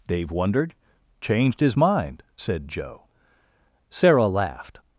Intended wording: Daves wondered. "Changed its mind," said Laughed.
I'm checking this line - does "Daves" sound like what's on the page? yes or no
no